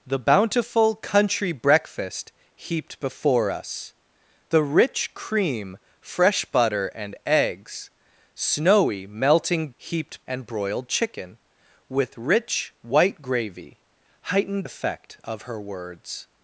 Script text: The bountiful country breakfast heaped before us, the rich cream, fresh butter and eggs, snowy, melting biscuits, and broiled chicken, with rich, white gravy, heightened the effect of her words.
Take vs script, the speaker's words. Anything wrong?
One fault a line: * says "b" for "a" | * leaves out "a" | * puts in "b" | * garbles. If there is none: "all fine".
* says "heaped" for "biscuits"
* leaves out "the"